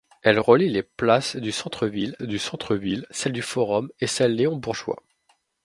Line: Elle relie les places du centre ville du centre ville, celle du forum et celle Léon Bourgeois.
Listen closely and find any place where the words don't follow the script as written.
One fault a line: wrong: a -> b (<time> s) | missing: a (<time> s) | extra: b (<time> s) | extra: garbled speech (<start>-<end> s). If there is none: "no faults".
no faults